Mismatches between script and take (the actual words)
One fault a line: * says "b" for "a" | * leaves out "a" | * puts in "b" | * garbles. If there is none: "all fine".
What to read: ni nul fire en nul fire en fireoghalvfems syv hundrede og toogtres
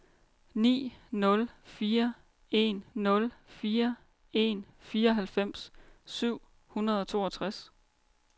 all fine